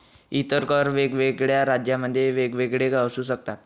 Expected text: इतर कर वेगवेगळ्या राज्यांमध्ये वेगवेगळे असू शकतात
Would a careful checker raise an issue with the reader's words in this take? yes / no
no